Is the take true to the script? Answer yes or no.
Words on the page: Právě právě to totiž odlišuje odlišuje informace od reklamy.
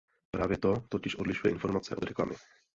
no